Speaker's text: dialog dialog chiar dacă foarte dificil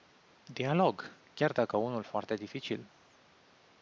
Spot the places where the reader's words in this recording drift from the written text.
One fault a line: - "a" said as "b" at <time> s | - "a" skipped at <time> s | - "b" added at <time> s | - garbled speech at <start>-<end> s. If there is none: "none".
- "dialog" skipped at 1.2 s
- "unul" added at 1.8 s